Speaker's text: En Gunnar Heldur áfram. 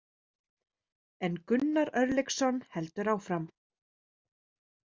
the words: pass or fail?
fail